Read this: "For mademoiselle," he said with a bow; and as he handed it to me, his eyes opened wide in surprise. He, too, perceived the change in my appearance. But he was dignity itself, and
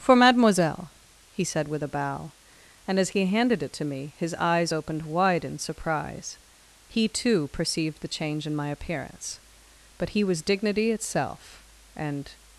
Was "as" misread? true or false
false